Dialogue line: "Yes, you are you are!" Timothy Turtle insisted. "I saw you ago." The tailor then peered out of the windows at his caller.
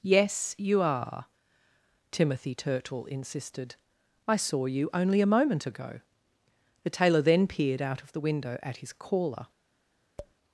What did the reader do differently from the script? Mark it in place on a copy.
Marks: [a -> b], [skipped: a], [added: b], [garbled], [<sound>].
"Yes, you are [skipped: you are!"] Timothy Turtle insisted. "I saw you [added: only a moment] ago." The tailor then peered out of the [windows -> window] at his caller. [tap]